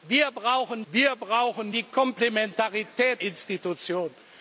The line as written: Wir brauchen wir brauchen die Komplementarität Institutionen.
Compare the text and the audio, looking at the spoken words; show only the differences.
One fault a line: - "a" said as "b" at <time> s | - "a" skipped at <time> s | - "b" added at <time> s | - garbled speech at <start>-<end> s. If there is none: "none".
none